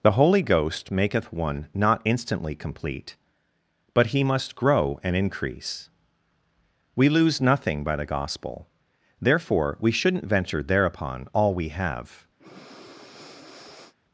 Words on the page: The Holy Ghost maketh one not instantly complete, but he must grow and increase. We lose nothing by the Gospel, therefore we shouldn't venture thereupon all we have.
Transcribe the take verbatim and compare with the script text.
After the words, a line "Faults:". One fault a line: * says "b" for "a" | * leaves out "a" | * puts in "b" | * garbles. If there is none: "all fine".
The Holy Ghost maketh one not instantly complete, but he must grow and increase. We lose nothing by the Gospel, therefore we shouldn't venture thereupon all we have.
Faults:
all fine